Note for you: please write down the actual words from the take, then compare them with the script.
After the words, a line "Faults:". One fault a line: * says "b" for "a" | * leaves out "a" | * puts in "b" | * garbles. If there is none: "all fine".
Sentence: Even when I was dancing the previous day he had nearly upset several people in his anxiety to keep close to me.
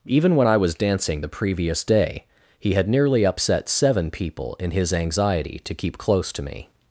Even when I was dancing the previous day he had nearly upset seven people in his anxiety to keep close to me.
Faults:
* says "seven" for "several"